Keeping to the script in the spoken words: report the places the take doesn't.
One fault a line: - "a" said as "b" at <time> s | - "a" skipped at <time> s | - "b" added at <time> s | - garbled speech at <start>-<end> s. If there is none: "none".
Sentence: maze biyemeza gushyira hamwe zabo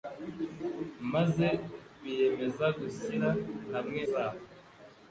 none